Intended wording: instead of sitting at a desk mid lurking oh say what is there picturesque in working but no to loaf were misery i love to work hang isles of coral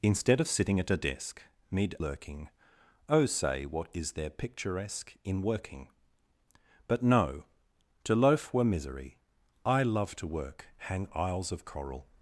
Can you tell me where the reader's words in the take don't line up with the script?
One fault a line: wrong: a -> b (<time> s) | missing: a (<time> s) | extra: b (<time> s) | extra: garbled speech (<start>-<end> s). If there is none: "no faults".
no faults